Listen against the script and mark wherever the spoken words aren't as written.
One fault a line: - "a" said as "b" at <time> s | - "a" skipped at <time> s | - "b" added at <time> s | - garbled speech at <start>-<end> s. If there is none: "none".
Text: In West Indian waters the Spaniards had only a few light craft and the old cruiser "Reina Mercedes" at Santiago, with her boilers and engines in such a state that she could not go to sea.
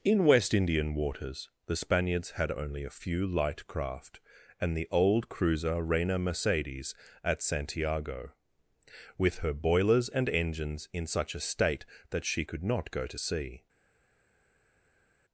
none